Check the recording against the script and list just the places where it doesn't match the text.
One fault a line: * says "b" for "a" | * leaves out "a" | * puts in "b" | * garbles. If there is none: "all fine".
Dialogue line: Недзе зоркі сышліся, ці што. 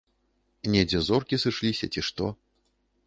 all fine